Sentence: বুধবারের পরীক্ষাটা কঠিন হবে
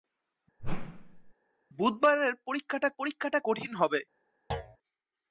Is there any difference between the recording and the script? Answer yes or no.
yes